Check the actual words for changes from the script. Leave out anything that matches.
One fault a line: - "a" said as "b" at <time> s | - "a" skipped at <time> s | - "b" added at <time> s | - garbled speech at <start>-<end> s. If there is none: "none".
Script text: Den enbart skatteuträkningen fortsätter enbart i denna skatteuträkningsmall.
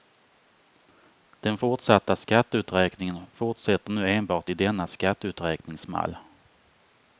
- "enbart" said as "fortsatta" at 1.5 s
- "nu" added at 3.9 s